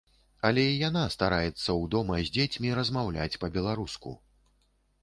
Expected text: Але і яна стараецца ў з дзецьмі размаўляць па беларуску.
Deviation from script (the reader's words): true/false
true